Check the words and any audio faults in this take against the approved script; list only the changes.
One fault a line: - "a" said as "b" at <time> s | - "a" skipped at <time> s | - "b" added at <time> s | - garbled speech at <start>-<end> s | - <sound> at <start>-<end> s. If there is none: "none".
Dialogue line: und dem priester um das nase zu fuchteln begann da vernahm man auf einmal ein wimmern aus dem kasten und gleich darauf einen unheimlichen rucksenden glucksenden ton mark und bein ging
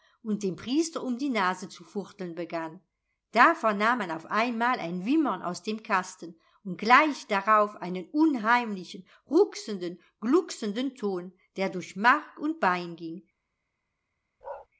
- "das" said as "die" at 1.2 s
- "der durch" added at 11.6 s
- bark at 14.4-14.7 s